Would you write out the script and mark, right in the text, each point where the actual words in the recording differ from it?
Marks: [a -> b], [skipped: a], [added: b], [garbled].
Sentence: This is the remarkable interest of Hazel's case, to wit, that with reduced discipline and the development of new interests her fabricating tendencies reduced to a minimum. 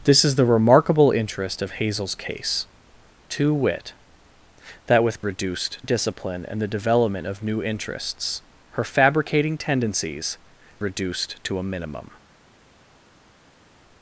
This is the remarkable interest of Hazel's case, to wit, that with reduced discipline and the development of new interests her fabricating tendencies reduced to a minimum.